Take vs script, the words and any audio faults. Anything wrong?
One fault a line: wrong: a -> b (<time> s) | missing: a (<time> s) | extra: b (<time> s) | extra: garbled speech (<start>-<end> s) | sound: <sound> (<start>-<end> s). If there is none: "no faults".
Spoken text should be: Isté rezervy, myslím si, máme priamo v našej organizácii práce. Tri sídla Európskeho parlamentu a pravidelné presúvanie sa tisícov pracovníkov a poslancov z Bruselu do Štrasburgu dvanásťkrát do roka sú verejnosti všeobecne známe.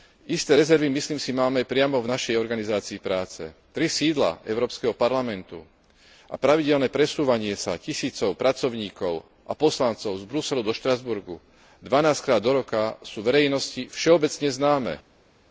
no faults